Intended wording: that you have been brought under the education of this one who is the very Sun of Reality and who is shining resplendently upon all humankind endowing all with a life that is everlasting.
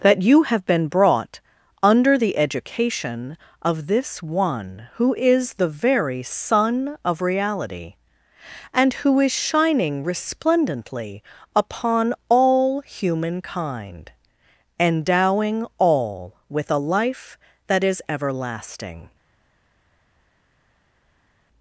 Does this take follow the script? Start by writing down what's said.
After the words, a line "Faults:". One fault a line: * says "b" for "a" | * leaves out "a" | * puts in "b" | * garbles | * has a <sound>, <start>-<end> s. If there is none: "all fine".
that you have been brought under the education of this one who is the very Sun of Reality and who is shining resplendently upon all humankind endowing all with a life that is everlasting.
Faults:
all fine